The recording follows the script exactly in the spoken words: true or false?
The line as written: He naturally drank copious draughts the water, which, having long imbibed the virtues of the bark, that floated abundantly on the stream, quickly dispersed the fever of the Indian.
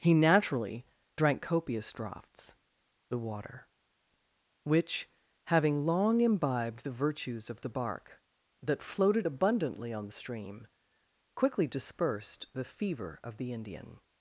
true